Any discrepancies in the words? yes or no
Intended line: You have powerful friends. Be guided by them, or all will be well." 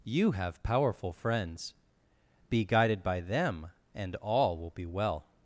yes